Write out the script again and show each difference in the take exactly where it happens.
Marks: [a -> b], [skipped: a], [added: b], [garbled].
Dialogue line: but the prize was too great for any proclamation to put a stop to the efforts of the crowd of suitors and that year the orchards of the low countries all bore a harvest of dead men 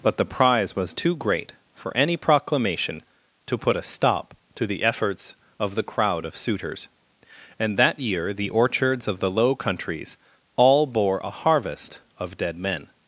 but the prize was too great for any proclamation to put a stop to the efforts of the crowd of suitors and that year the orchards of the low countries all bore a harvest of dead men